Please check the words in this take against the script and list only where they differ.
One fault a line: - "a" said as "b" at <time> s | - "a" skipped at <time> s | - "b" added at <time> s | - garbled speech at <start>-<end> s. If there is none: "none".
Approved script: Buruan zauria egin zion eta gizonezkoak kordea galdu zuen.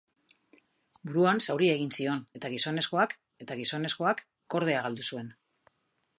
- "eta gizonezkoak" added at 3.5 s